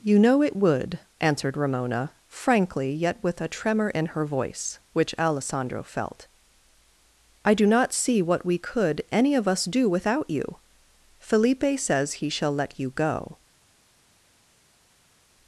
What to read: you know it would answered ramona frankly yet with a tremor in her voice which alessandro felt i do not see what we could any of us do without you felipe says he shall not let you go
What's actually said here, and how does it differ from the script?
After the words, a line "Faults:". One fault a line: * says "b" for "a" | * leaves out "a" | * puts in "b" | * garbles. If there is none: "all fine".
you know it would answered ramona frankly yet with a tremor in her voice which alessandro felt i do not see what we could any of us do without you felipe says he shall let you go
Faults:
* leaves out "not"